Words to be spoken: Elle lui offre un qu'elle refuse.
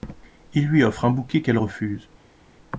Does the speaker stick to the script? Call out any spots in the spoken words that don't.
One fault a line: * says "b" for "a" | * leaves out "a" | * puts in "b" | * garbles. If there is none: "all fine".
* says "Il" for "Elle"
* puts in "bouquet"